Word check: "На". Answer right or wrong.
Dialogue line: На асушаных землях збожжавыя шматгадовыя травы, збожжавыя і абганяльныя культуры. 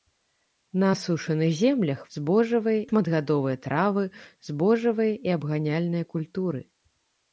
right